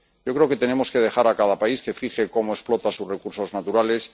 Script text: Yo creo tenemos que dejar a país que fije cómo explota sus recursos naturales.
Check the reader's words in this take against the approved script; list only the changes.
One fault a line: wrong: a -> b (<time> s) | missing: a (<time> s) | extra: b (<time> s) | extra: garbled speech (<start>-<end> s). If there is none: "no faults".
extra: que (0.5 s)
extra: cada (1.4 s)